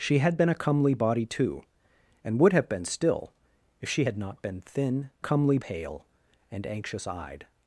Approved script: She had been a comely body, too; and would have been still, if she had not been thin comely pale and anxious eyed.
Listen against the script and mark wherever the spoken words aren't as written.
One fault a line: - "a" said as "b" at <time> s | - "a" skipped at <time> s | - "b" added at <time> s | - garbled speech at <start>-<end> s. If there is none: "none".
none